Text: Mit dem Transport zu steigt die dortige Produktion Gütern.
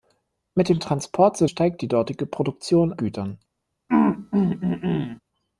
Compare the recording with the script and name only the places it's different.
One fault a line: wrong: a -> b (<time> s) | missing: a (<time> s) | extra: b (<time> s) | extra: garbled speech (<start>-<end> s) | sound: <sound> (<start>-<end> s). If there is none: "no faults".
sound: throat clearing (3.9-5.2 s)